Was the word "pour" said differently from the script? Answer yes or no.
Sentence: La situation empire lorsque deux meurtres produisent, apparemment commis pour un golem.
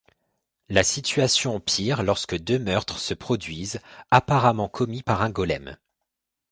yes